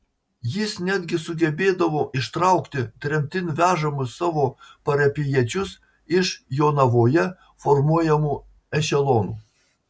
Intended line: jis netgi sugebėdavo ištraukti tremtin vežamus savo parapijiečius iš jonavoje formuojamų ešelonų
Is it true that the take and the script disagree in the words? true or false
false